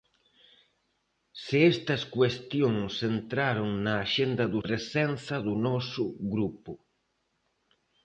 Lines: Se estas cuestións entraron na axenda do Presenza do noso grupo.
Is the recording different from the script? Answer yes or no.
no